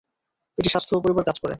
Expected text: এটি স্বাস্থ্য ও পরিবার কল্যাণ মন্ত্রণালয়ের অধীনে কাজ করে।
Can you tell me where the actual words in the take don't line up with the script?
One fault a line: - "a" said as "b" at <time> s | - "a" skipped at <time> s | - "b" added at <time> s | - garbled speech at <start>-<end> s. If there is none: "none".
- "কল্যাণ মন্ত্রণালয়ের অধীনে" skipped at 1.3 s